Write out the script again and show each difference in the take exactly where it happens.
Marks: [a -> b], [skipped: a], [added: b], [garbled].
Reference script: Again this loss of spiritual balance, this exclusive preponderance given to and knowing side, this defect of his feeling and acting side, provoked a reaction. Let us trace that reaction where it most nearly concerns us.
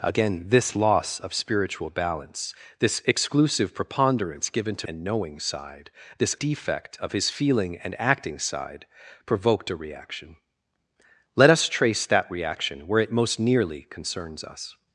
Again this loss of spiritual balance, this exclusive preponderance given to and knowing side, this defect of his feeling and acting side, provoked a reaction. Let us trace that reaction where it most nearly concerns us.